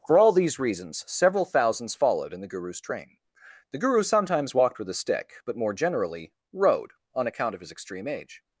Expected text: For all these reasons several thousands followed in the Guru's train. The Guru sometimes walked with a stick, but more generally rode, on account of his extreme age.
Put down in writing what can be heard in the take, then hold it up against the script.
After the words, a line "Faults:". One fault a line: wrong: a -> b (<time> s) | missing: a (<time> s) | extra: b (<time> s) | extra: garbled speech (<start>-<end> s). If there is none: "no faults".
For all these reasons several thousands followed in the Guru's train. The Guru sometimes walked with a stick, but more generally rode, on account of his extreme age.
Faults:
no faults